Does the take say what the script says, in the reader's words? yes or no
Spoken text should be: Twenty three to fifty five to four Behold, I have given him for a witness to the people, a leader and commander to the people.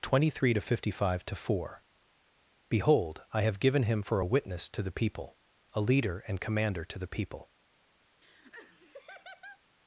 yes